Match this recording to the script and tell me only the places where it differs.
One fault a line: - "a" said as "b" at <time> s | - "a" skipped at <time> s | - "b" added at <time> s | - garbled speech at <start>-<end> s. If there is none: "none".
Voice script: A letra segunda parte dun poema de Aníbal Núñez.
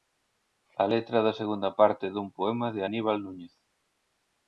- "da" added at 1.2 s